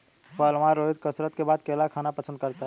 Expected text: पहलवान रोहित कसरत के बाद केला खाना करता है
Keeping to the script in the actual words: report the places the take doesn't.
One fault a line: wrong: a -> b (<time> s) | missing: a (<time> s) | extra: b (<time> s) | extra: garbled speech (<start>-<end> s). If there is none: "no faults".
extra: पसंद (2.1 s)